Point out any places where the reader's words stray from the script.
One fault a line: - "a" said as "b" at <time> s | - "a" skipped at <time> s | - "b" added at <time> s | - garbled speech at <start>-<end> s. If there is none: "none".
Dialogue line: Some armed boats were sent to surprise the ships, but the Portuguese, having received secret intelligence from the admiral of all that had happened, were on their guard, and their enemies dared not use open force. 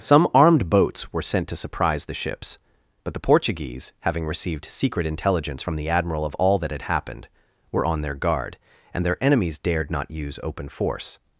none